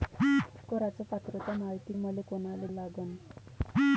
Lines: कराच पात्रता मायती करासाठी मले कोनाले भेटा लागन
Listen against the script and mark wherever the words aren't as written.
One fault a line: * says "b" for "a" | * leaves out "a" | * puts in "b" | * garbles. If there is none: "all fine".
* leaves out "करासाठी"
* leaves out "भेटा"